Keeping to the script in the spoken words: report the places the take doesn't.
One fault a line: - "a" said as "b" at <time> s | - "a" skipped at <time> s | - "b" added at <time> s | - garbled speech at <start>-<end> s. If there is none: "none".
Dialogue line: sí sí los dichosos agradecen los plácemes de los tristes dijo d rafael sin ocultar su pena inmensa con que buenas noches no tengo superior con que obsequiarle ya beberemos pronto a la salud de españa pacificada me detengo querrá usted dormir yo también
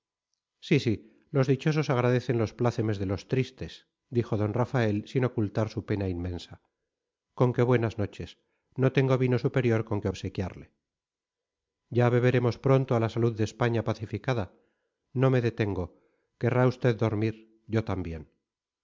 - "vino" added at 9.2 s
- "no" added at 15.1 s